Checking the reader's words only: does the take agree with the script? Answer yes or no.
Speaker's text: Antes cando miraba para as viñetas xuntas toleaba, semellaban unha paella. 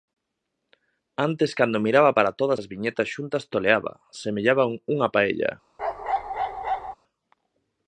no